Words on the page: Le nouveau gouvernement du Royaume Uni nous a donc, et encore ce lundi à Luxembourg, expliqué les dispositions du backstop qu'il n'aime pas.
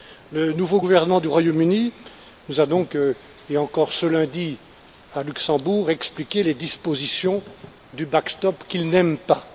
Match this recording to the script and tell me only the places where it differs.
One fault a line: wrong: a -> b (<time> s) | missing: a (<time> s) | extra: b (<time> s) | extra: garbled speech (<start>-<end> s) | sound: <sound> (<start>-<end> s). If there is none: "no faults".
no faults